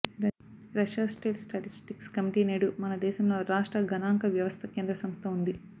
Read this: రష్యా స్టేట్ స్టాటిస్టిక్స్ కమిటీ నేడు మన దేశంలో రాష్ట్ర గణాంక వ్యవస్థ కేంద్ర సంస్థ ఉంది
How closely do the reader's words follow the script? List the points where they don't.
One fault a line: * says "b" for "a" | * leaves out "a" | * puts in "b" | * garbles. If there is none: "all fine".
all fine